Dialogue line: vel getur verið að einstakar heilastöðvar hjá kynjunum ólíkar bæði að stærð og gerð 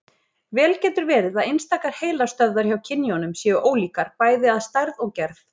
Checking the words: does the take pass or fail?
fail